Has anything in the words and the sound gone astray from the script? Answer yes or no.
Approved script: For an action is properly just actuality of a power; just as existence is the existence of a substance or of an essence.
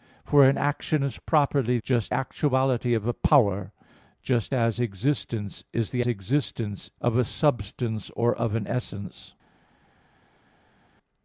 no